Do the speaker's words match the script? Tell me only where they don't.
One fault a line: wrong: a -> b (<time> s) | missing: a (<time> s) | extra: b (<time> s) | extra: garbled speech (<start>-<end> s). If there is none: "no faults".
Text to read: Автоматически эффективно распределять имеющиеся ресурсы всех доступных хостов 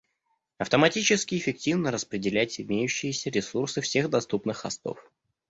no faults